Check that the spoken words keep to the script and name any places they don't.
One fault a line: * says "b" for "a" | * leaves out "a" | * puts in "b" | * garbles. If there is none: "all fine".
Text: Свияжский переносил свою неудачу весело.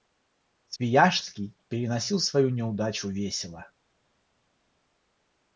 all fine